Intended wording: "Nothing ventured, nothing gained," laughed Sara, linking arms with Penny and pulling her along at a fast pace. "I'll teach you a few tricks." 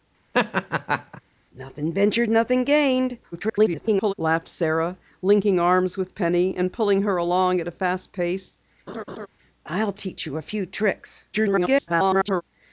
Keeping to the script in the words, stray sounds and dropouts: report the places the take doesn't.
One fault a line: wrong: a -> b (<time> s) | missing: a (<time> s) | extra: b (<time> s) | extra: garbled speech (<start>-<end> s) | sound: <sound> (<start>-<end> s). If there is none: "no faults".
sound: laugh (0.3-1.2 s)
extra: garbled speech (3.3-4.1 s)
sound: laugh (8.9-9.3 s)
extra: garbled speech (11.3-12.4 s)